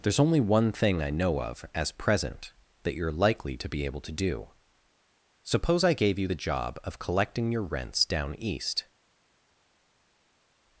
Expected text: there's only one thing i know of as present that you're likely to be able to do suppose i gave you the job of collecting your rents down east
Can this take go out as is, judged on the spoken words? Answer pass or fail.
pass